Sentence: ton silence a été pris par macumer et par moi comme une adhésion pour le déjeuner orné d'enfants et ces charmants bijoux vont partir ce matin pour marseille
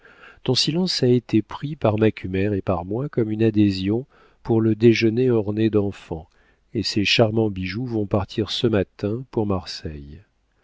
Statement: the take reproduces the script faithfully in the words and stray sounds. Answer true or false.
true